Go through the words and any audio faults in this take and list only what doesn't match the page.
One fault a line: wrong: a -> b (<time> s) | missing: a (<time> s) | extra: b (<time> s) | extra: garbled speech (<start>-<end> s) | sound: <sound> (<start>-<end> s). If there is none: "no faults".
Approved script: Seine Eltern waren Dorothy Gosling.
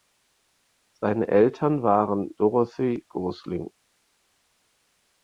no faults